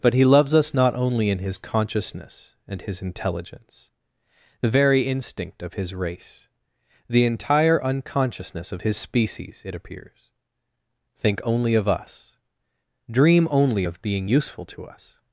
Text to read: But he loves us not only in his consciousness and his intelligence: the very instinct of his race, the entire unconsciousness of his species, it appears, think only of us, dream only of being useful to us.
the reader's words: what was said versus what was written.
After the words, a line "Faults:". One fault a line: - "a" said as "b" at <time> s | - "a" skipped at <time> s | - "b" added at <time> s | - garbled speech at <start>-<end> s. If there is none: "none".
But he loves us not only in his consciousness and his intelligence: the very instinct of his race, the entire unconsciousness of his species, it appears, think only of us, dream only of being useful to us.
Faults:
none